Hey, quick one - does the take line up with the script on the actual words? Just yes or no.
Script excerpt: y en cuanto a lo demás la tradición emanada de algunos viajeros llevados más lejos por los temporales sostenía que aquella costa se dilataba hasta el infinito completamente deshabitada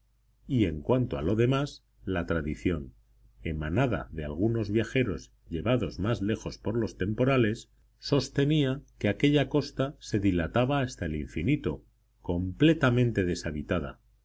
yes